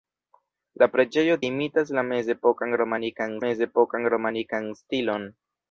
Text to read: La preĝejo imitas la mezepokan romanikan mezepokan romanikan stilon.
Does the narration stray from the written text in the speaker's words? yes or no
no